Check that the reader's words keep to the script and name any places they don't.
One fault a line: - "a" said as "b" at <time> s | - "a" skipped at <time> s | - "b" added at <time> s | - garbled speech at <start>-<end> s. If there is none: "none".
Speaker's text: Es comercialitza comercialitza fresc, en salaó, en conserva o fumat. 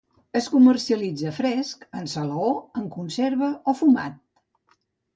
- "comercialitza" skipped at 1.3 s